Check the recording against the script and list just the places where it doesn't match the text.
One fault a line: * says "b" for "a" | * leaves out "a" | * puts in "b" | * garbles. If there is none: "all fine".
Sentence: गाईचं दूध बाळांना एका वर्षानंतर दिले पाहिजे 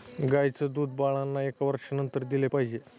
all fine